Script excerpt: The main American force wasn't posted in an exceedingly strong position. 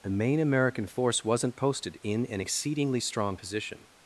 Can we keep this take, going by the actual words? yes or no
yes